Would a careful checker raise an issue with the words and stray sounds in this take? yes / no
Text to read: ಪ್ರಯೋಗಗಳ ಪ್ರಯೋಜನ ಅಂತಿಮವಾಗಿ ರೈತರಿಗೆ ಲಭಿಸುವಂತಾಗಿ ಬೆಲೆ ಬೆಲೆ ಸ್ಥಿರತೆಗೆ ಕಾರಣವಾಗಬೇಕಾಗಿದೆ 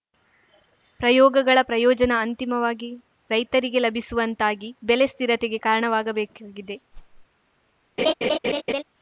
yes